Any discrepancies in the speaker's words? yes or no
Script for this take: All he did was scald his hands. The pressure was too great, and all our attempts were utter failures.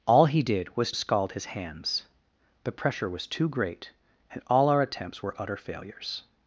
no